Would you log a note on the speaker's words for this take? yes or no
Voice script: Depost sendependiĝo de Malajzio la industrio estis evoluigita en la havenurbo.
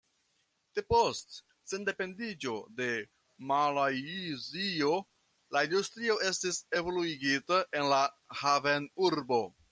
no